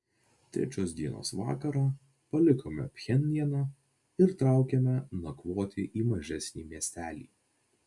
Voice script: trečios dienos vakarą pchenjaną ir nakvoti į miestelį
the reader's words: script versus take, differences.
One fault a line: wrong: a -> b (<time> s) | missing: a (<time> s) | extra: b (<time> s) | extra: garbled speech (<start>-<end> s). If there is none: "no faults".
extra: palikome (2.4 s)
extra: traukėme (4.4 s)
extra: mažesnį (6.2 s)